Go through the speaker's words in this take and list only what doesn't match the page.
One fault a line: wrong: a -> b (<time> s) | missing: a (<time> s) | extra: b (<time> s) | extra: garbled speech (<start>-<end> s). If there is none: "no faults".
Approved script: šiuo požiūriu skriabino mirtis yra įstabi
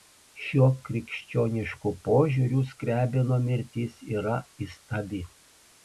extra: krikščionišku (0.9 s)